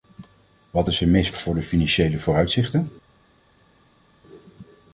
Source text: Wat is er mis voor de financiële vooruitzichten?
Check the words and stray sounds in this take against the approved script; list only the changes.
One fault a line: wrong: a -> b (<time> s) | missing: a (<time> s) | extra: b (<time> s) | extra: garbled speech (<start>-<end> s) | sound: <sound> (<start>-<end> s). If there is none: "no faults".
no faults